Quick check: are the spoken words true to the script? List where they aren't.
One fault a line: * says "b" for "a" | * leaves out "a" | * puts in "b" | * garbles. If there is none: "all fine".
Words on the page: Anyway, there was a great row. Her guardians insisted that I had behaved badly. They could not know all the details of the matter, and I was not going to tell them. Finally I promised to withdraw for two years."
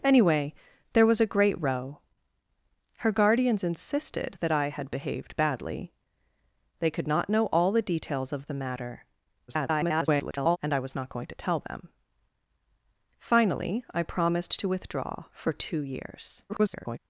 * garbles
* garbles